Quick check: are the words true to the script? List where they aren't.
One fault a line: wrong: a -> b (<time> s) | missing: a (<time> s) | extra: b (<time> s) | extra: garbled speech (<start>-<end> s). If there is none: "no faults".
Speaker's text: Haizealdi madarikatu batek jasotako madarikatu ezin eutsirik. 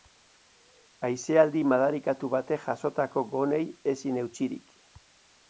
wrong: madarikatu -> gonei (3.4 s)